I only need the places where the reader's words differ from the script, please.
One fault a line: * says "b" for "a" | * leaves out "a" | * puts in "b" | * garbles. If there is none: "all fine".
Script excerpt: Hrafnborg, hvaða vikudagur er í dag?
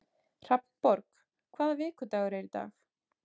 all fine